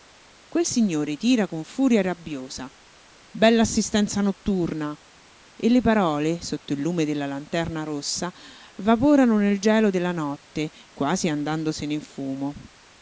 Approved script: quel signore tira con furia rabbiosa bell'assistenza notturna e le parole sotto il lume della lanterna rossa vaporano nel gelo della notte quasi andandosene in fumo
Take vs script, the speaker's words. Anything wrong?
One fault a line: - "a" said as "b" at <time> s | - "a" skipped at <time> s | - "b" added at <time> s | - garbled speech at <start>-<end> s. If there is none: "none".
none